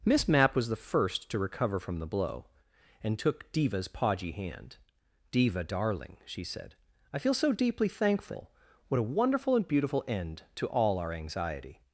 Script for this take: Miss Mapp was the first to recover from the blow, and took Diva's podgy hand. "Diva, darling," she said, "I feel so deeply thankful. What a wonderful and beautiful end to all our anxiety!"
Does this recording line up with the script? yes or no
yes